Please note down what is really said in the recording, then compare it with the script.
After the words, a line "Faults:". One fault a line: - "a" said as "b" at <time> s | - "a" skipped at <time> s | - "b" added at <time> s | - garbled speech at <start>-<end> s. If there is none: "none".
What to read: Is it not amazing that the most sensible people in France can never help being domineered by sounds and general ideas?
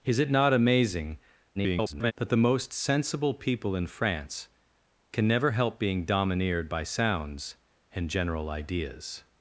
Is it not amazing [garbled] that the most sensible people in France can never help being domineered by sounds and general ideas?
Faults:
- garbled speech at 1.6-2.1 s